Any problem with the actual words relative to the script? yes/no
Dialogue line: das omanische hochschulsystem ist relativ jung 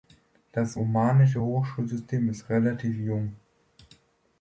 no